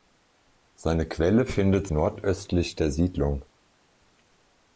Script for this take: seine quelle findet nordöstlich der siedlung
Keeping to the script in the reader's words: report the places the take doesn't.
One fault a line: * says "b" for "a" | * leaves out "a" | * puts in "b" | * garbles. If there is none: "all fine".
all fine